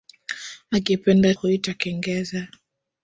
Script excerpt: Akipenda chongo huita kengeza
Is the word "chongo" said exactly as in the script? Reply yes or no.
no